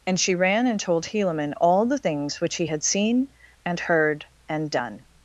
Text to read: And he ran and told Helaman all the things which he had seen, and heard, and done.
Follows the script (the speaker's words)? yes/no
no